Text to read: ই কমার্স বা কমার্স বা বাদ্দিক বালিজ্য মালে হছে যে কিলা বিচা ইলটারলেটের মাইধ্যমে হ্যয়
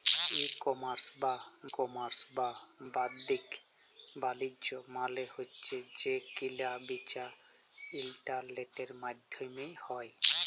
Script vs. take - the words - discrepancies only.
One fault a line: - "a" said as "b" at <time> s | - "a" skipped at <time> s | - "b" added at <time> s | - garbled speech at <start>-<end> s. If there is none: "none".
none